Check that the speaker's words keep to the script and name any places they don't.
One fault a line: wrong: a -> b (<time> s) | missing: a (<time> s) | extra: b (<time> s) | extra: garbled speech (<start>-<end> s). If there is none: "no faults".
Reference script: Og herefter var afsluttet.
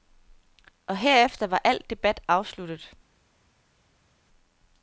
extra: al debat (1.6 s)